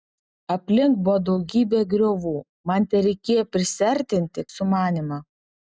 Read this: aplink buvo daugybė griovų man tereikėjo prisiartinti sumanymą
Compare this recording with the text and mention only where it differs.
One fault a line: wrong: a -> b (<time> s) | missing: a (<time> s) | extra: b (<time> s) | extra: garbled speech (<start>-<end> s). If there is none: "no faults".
no faults